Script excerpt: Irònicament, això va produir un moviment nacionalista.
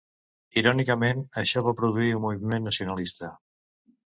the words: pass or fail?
pass